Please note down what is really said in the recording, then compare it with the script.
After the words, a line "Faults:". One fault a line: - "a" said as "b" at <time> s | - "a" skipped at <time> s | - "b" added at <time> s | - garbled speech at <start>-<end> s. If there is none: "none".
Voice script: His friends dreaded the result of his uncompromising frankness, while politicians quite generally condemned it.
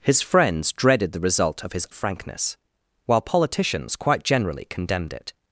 His friends dreaded the result of his frankness, while politicians quite generally condemned it.
Faults:
- "uncompromising" skipped at 1.9 s